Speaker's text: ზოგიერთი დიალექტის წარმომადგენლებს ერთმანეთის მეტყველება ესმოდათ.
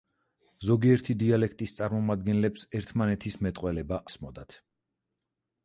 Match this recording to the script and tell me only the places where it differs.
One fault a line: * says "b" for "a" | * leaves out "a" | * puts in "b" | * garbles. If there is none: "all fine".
all fine